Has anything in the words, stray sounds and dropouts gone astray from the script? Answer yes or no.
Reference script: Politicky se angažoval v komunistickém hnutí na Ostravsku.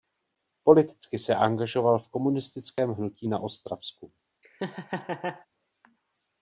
yes